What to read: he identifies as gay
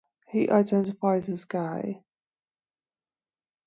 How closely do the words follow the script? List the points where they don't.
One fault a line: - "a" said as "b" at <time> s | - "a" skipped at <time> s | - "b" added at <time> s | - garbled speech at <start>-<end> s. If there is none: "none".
none